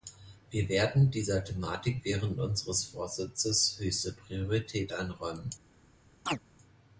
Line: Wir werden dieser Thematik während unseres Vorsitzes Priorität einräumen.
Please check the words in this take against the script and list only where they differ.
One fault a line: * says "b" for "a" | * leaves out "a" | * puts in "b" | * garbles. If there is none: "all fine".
* puts in "höchste"